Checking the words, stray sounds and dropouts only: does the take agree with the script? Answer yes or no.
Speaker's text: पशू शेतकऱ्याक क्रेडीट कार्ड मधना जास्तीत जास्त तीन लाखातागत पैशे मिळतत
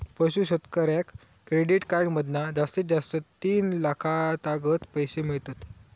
yes